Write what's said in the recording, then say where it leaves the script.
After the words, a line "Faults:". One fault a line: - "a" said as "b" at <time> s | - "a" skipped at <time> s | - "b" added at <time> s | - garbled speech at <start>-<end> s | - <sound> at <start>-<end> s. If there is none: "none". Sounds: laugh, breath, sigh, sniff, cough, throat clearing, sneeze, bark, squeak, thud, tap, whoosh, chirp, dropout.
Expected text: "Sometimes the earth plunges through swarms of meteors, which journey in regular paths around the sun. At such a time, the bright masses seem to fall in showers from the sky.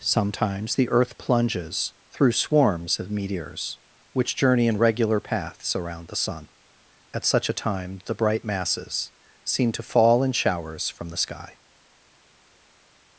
"Sometimes the earth plunges through swarms of meteors, which journey in regular paths around the sun. At such a time, the bright masses seem to fall in showers from the sky.
Faults:
none